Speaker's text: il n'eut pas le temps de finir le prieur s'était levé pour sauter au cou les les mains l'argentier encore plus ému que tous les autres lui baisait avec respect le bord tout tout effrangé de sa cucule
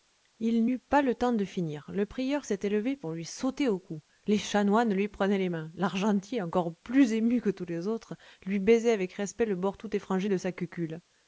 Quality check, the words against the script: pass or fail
fail